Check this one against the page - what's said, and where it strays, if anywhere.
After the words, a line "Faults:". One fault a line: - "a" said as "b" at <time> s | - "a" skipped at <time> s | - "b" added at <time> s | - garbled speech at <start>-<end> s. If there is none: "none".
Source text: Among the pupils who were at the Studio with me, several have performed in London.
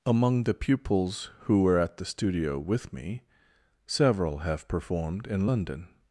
Among the pupils who were at the Studio with me, several have performed in London.
Faults:
none